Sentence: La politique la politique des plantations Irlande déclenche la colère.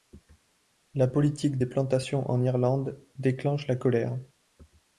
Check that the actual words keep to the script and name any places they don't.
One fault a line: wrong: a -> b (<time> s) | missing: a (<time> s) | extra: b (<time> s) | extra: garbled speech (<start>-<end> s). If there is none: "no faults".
missing: la politique (1.6 s)
extra: en (2.3 s)